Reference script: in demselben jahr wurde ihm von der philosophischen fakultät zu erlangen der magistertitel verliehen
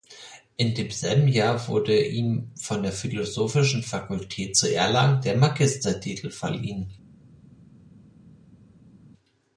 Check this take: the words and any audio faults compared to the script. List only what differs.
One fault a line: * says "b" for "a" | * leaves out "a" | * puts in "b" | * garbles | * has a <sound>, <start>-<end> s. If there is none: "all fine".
all fine